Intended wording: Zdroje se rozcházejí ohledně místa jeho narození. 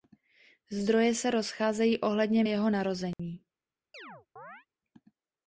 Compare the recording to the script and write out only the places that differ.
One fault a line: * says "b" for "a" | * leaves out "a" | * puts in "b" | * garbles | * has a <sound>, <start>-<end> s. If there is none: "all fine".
* leaves out "místa"
* has a dropout, 3.1-3.2 s
* has a chirp, 3.9-4.7 s